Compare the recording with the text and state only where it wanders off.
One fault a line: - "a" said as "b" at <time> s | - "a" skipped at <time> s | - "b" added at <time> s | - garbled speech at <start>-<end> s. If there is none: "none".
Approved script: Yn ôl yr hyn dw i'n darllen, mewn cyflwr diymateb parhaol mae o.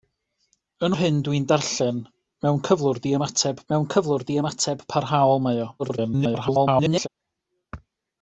- "ôl" skipped at 0.9 s
- "mewn cyflwr diymateb" added at 3.7 s
- garbled speech at 5.8-7.1 s